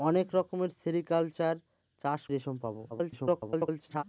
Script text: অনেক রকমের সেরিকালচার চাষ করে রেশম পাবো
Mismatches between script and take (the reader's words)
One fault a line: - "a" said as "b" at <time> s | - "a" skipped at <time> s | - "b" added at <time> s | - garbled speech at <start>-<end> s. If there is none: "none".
- "করে" skipped at 2.2 s
- garbled speech at 2.9-4.0 s